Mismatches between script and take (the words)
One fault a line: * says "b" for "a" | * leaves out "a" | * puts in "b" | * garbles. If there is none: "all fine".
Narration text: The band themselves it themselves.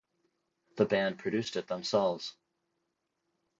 * says "produced" for "themselves"